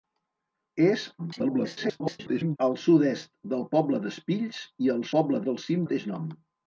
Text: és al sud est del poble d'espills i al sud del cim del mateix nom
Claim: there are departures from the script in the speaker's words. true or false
true